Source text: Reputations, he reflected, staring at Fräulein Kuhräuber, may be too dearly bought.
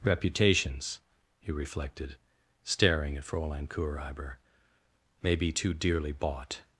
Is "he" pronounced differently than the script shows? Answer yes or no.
no